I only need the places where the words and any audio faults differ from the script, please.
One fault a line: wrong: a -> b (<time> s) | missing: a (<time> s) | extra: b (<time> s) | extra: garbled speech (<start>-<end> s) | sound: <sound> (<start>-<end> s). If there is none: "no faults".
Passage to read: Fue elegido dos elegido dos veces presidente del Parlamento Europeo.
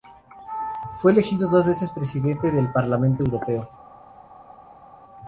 missing: elegido dos (1.7 s)